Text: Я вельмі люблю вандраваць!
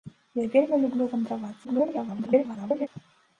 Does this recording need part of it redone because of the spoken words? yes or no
yes